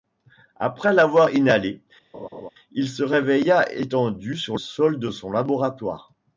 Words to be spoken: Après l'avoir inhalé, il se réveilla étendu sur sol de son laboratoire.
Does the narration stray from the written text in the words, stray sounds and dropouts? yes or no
yes